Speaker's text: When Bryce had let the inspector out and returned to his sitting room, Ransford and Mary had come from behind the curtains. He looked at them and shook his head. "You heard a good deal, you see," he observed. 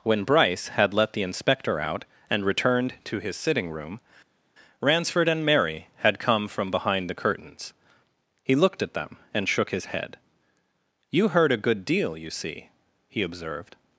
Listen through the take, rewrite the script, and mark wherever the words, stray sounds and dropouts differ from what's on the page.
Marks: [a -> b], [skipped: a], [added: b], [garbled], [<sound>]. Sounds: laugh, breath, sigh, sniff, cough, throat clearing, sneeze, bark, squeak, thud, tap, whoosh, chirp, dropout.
When Bryce had let the inspector out and returned to his sitting room, Ransford and Mary had come from behind the curtains. He looked at them and shook his head. "You heard a good deal, you see," he observed.